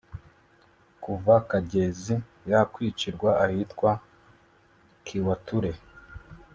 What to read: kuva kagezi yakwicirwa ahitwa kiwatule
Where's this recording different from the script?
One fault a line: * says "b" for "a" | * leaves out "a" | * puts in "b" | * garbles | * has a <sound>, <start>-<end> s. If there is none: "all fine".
all fine